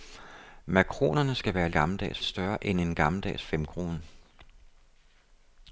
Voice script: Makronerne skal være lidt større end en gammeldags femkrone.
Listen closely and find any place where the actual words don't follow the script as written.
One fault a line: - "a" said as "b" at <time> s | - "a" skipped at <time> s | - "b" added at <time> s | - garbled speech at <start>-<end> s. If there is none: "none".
- "lidt" said as "gammeldags" at 1.7 s